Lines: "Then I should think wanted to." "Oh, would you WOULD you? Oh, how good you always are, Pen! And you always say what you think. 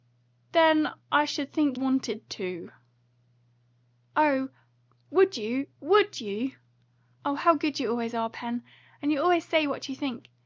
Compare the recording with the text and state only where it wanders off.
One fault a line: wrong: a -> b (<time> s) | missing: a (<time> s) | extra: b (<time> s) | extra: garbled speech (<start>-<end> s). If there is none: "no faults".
no faults